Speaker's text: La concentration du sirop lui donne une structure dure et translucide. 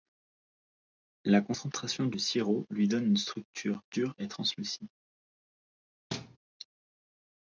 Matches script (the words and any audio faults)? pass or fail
fail